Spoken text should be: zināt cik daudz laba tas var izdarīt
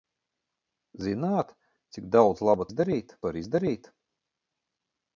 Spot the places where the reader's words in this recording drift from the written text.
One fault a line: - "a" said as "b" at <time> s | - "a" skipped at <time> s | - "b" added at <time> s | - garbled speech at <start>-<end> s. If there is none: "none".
- "tas" said as "izdarīt" at 2.7 s